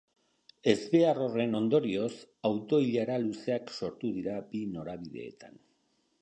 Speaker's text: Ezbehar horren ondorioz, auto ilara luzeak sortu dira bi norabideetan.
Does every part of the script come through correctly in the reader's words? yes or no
yes